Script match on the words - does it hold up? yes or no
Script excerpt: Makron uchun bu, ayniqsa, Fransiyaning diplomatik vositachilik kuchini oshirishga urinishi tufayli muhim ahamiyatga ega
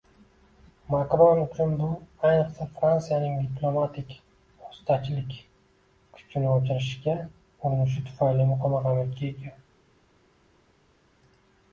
yes